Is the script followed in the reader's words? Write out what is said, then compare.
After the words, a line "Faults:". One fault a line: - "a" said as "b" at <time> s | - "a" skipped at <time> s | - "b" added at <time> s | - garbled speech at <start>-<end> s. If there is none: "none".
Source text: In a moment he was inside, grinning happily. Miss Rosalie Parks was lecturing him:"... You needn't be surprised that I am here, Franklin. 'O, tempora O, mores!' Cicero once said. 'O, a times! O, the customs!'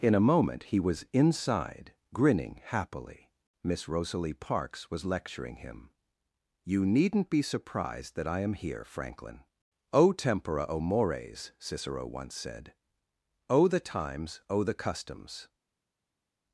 In a moment he was inside, grinning happily. Miss Rosalie Parks was lecturing him:"... You needn't be surprised that I am here, Franklin. 'O, tempora O, mores!' Cicero once said. 'O, the times! O, the customs!'
Faults:
- "a" said as "the" at 13.7 s